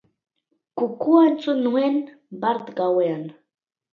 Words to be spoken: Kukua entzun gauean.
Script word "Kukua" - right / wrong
right